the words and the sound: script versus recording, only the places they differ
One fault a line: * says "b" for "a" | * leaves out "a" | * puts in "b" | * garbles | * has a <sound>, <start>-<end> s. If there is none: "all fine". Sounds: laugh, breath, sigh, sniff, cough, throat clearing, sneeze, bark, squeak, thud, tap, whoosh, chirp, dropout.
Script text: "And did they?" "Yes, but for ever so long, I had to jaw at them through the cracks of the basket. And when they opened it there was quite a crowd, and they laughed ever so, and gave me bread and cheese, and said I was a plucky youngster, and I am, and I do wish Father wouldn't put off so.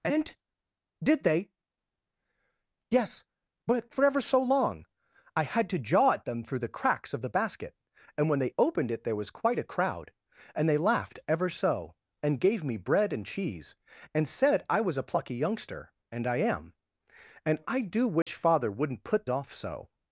* has a dropout, 18.2-18.3 s